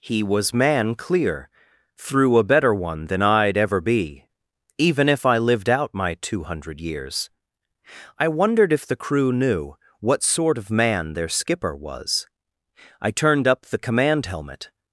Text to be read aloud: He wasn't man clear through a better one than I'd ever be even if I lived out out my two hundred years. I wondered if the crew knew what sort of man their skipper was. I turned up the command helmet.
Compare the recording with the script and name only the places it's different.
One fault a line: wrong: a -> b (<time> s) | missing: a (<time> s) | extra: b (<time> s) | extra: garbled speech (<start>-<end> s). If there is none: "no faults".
wrong: wasn't -> was (0.2 s)
missing: out (5.9 s)